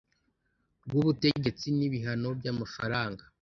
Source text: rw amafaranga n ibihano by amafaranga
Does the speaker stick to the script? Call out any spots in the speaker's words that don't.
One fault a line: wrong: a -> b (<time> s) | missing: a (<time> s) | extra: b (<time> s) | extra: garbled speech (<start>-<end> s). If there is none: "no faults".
wrong: amafaranga -> ubutegetsi (1.0 s)